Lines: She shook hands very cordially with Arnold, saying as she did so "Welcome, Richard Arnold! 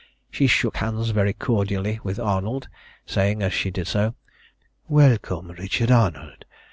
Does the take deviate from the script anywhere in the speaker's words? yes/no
no